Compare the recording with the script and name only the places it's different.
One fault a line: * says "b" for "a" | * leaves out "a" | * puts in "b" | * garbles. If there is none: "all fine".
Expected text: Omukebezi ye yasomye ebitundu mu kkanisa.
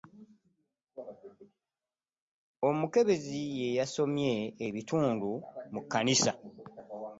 all fine